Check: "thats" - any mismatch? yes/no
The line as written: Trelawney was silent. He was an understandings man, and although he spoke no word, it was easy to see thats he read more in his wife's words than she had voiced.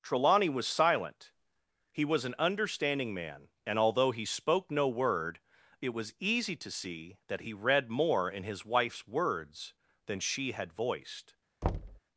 yes